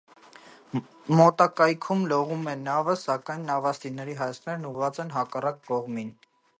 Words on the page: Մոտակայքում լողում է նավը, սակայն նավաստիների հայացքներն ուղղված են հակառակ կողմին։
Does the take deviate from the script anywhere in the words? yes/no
no